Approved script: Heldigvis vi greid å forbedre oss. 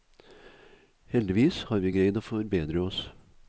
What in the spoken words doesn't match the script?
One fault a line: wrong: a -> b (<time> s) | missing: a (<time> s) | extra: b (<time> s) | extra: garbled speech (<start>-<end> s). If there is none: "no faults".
extra: har (1.7 s)